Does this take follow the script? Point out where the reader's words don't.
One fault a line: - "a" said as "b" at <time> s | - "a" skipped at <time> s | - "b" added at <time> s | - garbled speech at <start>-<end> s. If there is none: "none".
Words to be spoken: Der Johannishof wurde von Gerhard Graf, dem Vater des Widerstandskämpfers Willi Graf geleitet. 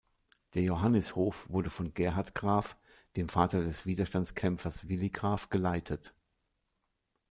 none